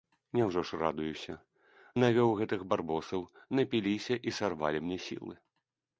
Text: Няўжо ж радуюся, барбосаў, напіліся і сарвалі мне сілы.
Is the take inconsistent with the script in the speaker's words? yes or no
yes